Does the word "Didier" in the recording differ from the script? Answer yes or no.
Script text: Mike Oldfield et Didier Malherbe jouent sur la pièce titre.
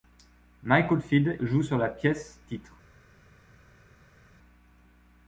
yes